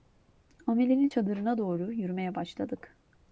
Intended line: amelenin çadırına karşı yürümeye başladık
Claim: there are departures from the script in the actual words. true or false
true